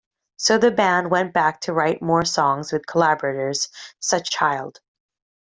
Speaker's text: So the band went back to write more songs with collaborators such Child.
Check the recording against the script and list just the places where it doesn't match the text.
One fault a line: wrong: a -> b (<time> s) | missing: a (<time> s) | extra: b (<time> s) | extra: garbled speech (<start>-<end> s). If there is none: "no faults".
no faults